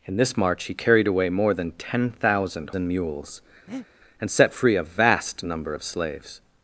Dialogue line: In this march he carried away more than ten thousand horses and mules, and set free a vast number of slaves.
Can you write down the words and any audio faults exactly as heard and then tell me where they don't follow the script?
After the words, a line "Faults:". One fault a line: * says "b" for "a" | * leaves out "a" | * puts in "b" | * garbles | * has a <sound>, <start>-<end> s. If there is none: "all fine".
In this march he carried away more than ten thousand and mules, and set free a vast number of slaves.
Faults:
* leaves out "horses"
* has a breath, 3.7-3.9 s